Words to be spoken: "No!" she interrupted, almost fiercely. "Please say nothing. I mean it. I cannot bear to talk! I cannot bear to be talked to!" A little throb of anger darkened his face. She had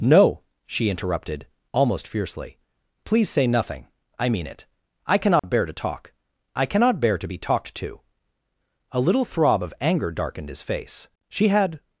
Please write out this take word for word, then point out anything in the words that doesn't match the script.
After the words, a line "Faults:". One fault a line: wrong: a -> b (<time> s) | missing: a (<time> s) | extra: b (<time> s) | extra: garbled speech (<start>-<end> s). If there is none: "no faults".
"No!" she interrupted, almost fiercely. "Please say nothing. I mean it. I cannot bear to talk! I cannot bear to be talked to!" A little throb of anger darkened his face. She had
Faults:
no faults